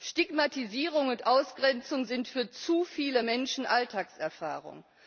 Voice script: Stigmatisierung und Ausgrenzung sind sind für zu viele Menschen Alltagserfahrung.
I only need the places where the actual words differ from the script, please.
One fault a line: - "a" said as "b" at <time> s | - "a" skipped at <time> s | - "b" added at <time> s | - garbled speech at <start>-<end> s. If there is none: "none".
- "sind" skipped at 2.3 s